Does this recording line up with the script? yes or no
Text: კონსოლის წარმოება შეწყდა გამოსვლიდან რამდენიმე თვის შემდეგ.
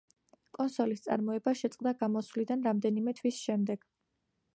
yes